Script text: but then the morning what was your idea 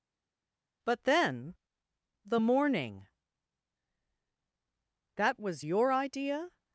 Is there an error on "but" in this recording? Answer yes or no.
no